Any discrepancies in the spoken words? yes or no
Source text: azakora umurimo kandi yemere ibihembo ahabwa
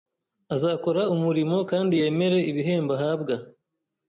no